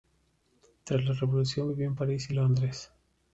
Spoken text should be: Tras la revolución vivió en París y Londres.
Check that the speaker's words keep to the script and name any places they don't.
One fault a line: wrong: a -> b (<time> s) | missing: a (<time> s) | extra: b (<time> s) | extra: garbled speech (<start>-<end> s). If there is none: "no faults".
no faults